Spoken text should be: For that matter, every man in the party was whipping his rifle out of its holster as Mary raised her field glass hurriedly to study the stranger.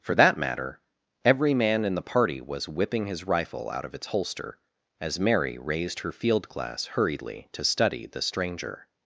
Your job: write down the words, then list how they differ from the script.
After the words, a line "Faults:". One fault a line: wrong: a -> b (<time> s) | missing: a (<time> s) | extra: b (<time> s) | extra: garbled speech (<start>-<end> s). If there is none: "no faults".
For that matter, every man in the party was whipping his rifle out of its holster as Mary raised her field glass hurriedly to study the stranger.
Faults:
no faults